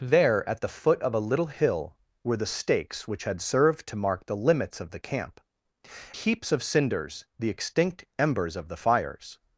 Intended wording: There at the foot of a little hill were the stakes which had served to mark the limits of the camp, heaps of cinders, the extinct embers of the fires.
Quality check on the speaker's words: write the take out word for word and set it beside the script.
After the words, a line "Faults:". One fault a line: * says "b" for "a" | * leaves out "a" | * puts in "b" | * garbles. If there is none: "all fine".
There at the foot of a little hill were the stakes which had served to mark the limits of the camp, heaps of cinders, the extinct embers of the fires.
Faults:
all fine